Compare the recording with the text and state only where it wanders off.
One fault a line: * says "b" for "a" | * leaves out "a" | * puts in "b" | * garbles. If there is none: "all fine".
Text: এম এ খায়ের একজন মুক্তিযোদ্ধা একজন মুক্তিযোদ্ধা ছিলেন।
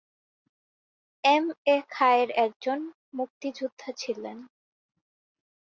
* leaves out "একজন মুক্তিযোদ্ধা"